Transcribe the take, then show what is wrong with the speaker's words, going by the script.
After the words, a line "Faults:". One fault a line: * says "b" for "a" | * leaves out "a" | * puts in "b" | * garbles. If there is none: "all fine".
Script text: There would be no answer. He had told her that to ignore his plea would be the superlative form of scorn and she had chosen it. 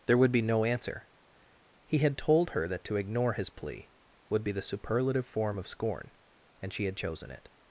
There would be no answer. He had told her that to ignore his plea would be the superlative form of scorn and she had chosen it.
Faults:
all fine